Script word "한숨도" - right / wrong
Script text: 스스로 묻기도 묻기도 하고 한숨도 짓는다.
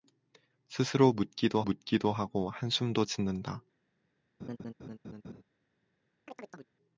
right